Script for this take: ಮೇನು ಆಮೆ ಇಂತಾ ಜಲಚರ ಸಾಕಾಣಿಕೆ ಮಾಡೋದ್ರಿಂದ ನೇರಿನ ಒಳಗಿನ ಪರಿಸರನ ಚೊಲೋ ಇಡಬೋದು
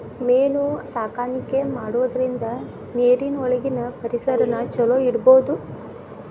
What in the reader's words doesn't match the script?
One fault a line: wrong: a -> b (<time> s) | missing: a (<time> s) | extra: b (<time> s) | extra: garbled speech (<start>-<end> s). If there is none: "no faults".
missing: ಆಮೆ ಇಂತಾ ಜಲಚರ (0.6 s)